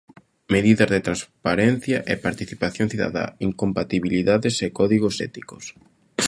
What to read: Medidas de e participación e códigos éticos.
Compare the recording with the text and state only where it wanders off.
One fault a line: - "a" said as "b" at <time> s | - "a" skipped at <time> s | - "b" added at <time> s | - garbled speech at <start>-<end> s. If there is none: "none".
- "transparencia" added at 1.1 s
- "cidadá incompatibilidades" added at 2.9 s